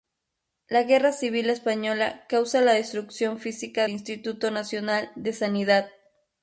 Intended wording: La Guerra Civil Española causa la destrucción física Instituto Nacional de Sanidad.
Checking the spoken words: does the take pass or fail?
pass